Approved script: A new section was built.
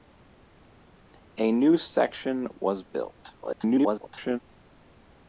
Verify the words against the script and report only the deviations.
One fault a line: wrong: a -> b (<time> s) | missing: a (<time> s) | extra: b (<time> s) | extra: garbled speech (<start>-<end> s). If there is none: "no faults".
extra: garbled speech (3.4-4.4 s)